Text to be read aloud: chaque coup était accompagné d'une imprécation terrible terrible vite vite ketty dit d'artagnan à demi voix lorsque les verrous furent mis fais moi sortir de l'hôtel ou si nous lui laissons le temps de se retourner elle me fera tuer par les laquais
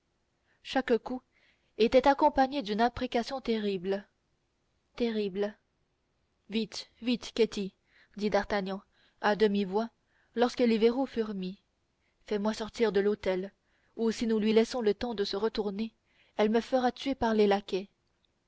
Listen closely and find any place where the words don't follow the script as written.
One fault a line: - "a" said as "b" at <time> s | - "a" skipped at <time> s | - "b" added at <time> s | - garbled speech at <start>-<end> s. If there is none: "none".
none